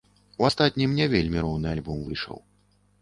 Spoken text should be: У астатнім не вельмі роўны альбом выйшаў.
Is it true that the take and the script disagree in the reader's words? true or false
false